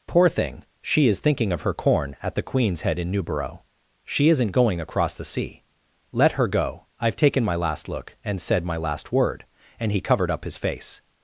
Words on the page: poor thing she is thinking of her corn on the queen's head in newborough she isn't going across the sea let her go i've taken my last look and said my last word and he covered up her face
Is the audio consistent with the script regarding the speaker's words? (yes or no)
no